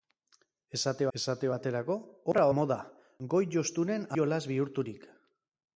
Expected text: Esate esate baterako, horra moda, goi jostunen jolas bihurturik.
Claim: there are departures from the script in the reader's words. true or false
false